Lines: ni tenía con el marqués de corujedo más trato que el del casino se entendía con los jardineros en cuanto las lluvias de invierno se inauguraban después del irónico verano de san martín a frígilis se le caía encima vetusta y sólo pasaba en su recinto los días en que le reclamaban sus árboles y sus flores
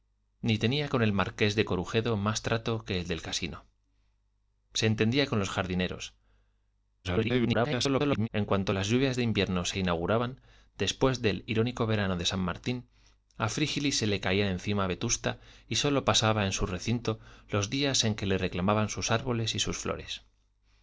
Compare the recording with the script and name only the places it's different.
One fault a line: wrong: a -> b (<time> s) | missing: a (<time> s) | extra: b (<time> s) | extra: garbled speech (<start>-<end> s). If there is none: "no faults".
extra: garbled speech (7.0-8.3 s)